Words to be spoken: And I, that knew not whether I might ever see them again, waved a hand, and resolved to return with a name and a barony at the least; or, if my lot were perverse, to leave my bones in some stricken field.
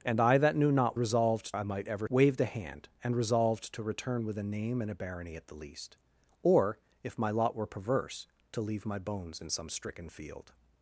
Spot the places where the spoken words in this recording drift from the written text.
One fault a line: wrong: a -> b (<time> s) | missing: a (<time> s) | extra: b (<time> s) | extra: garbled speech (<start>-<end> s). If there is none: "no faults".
wrong: whether -> resolved (1.0 s)
missing: see them again (2.1 s)